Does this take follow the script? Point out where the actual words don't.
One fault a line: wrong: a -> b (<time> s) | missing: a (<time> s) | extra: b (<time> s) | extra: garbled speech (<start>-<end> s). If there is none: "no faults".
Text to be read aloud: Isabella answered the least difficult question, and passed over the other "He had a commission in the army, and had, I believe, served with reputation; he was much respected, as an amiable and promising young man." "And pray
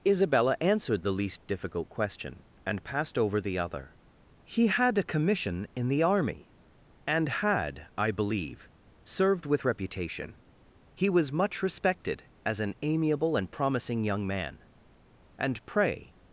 no faults